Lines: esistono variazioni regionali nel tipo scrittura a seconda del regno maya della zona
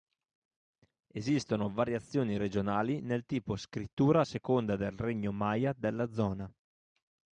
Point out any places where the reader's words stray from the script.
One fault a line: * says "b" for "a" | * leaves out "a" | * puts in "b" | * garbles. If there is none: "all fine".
all fine